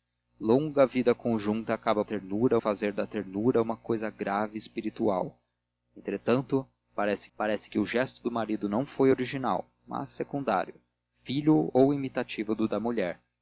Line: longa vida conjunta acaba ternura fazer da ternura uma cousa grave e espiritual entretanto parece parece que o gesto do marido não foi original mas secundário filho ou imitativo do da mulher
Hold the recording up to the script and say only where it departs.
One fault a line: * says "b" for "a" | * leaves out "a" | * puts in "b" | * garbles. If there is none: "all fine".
all fine